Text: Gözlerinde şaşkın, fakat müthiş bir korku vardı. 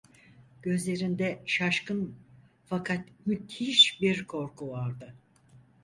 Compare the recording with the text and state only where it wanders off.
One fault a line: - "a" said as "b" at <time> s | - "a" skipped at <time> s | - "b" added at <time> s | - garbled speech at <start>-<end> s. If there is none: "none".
none